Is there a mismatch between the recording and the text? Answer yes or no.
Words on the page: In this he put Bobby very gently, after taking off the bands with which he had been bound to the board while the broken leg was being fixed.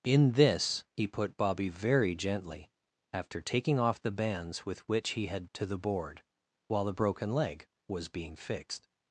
yes